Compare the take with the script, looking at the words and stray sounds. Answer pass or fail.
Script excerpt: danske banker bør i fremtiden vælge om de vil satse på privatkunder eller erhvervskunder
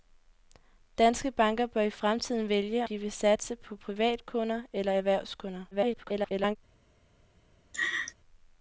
fail